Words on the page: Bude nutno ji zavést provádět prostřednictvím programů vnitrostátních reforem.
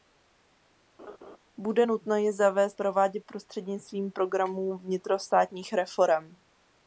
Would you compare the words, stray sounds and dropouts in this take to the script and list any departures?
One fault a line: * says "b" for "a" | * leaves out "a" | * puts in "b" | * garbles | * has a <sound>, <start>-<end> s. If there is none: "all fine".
* has a laugh, 1.0-1.4 s